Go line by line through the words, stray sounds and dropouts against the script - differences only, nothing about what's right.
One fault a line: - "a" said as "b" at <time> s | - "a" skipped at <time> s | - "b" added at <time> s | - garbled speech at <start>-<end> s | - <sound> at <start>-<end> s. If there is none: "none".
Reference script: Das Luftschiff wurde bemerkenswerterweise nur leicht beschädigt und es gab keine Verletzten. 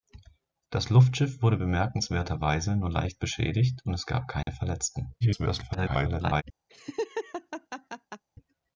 - dropout at 4.4-4.5 s
- garbled speech at 5.2-6.4 s
- laugh at 6.7-8.2 s